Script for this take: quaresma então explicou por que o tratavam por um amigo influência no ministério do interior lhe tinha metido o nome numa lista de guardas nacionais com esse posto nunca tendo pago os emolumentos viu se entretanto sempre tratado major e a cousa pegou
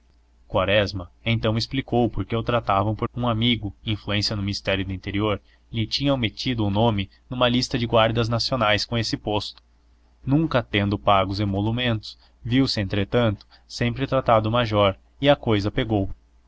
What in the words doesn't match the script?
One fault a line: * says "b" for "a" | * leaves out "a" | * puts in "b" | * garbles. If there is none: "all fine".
all fine